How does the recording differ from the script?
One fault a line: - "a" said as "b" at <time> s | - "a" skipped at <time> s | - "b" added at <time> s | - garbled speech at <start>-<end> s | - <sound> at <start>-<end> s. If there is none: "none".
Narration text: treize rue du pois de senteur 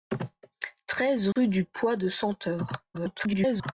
- dropout at 1.3-1.4 s
- garbled speech at 2.9-3.7 s